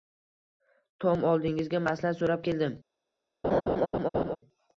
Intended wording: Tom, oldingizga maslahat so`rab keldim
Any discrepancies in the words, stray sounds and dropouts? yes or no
yes